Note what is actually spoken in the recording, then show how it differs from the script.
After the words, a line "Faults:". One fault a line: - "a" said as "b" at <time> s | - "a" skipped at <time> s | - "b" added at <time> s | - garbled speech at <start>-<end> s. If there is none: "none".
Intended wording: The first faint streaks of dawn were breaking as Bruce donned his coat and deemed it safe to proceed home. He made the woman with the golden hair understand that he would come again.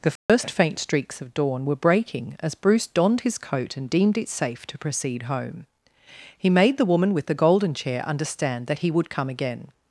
The first faint streaks of dawn were breaking as Bruce donned his coat and deemed it safe to proceed home. He made the woman with the golden chair understand that he would come again.
Faults:
- "hair" said as "chair" at 7.7 s